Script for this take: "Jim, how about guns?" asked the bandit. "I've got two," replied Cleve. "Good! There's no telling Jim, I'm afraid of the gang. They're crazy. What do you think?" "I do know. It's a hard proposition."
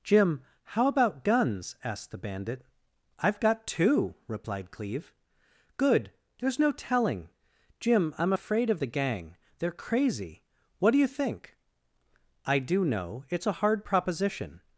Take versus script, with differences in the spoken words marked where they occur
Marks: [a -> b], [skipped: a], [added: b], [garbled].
"Jim, how about guns?" asked the bandit. "I've got two," replied Cleve. "Good! There's no telling Jim, I'm afraid of the gang. They're crazy. What do you think?" "I do know. It's a hard proposition."